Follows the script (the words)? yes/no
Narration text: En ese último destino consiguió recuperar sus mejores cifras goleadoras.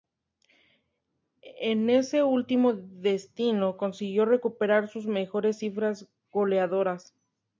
yes